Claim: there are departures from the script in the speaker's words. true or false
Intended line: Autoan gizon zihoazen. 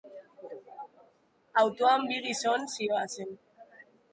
true